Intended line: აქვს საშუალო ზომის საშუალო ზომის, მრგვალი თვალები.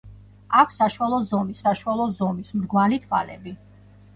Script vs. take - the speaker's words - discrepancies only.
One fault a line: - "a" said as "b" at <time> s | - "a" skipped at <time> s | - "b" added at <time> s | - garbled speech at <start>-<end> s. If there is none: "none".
none